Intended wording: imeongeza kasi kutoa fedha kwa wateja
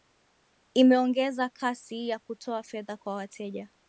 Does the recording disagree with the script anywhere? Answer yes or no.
yes